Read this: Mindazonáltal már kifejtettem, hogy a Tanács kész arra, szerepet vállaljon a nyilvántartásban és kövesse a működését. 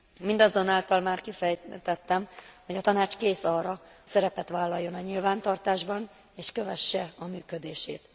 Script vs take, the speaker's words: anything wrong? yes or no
no